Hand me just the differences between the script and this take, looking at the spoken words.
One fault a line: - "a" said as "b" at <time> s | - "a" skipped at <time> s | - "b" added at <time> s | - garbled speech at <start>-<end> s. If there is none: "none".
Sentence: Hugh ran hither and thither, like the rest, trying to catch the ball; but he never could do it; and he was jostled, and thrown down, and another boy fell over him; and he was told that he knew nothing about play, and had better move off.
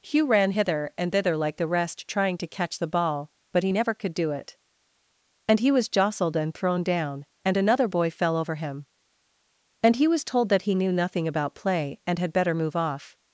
none